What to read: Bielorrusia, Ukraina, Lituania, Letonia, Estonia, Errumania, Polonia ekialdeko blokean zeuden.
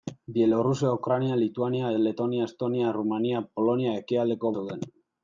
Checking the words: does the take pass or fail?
fail